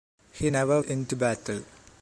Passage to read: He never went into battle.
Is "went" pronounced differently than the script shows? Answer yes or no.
yes